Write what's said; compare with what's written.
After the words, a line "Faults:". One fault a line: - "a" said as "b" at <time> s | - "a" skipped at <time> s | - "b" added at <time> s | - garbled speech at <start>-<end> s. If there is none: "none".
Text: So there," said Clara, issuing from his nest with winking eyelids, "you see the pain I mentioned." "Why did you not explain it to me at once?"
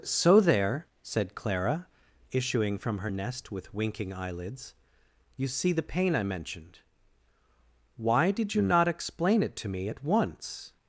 So there," said Clara, issuing from her nest with winking eyelids, "you see the pain I mentioned." "Why did you not explain it to me at once?"
Faults:
- "his" said as "her" at 3.0 s